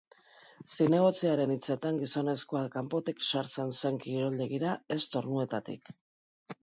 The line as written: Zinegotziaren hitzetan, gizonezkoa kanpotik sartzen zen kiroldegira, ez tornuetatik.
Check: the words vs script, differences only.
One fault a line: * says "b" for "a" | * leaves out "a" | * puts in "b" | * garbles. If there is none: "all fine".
all fine